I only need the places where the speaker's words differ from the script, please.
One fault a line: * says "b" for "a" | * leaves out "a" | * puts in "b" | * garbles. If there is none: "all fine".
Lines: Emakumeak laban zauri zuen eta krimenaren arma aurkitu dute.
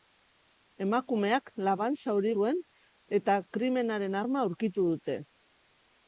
all fine